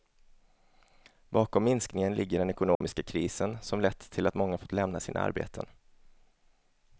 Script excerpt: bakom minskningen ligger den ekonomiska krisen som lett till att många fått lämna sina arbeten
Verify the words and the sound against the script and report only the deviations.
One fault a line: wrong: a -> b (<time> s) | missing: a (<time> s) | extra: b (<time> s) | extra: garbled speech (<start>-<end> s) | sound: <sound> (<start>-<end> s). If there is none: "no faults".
sound: dropout (2.7-2.8 s)